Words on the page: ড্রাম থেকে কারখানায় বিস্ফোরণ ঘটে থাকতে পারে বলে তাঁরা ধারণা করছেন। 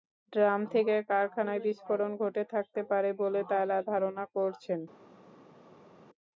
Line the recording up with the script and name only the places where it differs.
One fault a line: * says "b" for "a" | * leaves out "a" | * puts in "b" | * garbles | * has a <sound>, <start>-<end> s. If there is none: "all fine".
all fine